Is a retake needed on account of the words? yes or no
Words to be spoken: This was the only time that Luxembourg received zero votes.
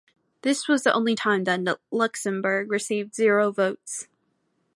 no